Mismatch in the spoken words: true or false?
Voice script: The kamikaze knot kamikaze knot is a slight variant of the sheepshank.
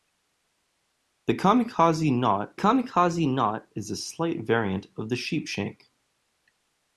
false